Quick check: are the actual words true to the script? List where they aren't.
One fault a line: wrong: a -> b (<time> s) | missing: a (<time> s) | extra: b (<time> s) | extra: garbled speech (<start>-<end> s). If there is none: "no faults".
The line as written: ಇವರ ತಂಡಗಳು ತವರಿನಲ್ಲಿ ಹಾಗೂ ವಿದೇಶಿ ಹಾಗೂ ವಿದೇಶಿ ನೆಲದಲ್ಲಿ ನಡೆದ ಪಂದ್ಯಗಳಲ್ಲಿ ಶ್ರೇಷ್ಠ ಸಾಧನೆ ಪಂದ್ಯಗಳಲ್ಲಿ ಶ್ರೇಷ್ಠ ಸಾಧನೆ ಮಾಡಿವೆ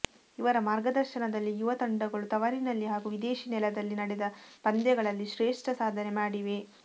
extra: ಮಾರ್ಗದರ್ಶನದಲ್ಲಿ ಯುವ (0.7 s)
missing: ಹಾಗೂ ವಿದೇಶಿ (3.5 s)
missing: ಪಂದ್ಯಗಳಲ್ಲಿ ಶ್ರೇಷ್ಠ ಸಾಧನೆ (6.1 s)